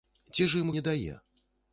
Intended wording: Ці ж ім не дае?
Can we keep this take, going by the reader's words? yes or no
yes